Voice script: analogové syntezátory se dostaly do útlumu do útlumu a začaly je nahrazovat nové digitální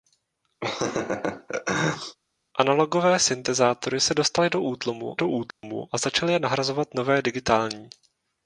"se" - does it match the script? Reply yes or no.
yes